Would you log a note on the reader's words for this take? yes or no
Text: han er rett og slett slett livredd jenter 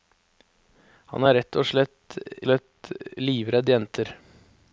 no